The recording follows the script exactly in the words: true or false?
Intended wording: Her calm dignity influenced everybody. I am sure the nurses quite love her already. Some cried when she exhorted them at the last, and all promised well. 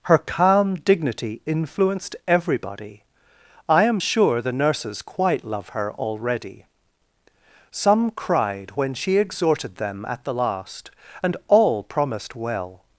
true